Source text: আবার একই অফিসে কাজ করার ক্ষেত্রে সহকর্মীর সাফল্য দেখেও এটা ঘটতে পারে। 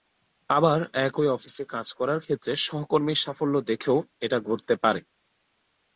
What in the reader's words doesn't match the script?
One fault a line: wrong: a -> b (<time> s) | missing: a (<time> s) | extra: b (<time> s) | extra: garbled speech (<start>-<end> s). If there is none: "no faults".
no faults